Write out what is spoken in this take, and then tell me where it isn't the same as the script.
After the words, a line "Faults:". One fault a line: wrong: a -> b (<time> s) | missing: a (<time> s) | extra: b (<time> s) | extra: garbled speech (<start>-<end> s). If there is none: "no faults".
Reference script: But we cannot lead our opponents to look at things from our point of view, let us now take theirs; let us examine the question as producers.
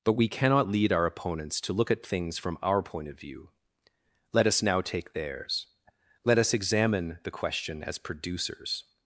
But we cannot lead our opponents to look at things from our point of view, let us now take theirs; let us examine the question as producers.
Faults:
no faults